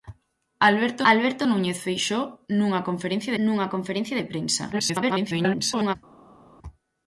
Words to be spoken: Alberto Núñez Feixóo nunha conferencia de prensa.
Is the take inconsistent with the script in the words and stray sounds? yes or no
yes